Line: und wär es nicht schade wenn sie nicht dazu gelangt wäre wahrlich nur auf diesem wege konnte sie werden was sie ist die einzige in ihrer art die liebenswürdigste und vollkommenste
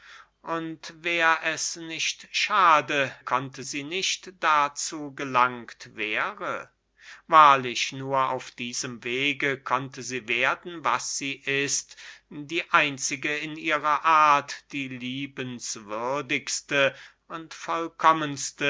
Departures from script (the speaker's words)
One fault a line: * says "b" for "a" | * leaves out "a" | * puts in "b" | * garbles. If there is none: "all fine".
* says "konnte" for "wenn"